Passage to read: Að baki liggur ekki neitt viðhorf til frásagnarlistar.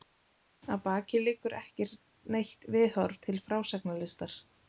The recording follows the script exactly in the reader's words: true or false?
true